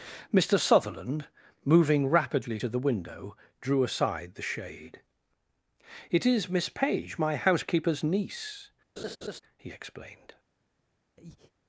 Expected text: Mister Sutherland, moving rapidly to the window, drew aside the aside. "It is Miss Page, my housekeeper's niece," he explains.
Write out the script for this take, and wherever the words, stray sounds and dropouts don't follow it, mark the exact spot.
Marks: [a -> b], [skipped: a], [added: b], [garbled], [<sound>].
Mister Sutherland, moving rapidly to the window, drew aside the [aside. -> shade] "It is Miss Page, my housekeeper's niece," [laugh] he [explains. -> explained] [breath]